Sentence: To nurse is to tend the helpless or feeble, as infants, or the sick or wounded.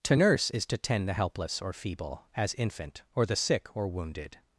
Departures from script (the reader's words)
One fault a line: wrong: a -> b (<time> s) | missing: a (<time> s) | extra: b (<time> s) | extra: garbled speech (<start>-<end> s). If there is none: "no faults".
wrong: infants -> infant (2.5 s)